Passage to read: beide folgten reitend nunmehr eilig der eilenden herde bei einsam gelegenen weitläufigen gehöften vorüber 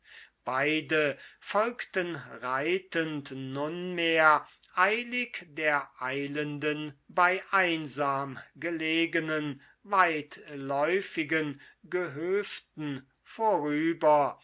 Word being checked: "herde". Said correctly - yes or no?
no